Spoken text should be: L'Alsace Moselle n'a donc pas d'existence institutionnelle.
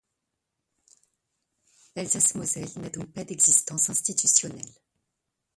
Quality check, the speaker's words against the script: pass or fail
pass